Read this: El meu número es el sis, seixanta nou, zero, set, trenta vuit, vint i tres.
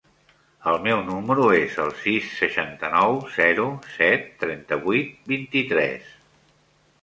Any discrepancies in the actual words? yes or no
no